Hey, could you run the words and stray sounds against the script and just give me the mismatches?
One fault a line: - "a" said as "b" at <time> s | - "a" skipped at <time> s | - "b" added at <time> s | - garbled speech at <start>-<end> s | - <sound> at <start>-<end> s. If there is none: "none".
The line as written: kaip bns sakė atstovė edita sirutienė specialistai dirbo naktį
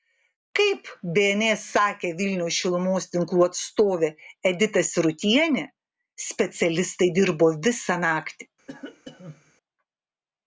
- "vilniaus šilumos tinklų" added at 2.2 s
- "visą" added at 7.7 s
- cough at 8.7-9.5 s